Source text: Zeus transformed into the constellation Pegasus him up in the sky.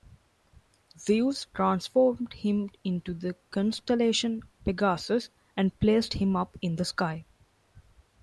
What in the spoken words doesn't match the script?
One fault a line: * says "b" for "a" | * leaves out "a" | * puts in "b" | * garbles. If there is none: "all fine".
* puts in "him"
* puts in "and placed"